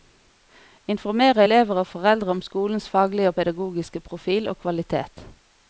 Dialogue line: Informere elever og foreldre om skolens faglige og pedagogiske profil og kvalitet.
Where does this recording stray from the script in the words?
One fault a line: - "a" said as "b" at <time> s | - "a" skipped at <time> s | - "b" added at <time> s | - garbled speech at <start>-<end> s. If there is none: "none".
none